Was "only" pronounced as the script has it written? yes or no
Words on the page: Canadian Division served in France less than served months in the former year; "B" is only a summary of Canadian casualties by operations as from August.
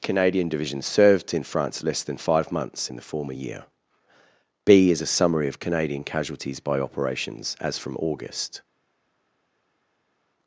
no